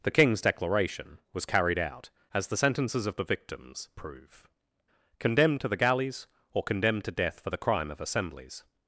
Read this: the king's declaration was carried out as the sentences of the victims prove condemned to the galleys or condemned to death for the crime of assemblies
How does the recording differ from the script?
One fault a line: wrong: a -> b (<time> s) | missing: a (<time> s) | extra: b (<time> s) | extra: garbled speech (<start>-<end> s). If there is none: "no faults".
no faults